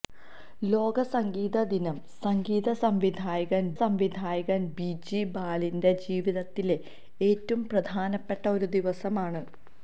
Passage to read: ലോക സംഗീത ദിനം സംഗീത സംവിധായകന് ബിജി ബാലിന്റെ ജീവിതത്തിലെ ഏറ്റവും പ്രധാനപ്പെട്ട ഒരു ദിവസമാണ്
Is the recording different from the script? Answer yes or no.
yes